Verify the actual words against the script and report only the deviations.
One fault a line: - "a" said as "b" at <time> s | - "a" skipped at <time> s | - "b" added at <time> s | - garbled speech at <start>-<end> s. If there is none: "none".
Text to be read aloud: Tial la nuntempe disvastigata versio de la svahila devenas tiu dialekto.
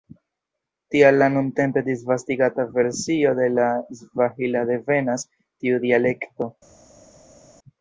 none